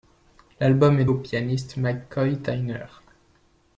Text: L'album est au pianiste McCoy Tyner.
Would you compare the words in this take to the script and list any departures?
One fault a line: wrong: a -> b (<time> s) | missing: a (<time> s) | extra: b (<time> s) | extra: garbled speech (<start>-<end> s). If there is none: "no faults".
no faults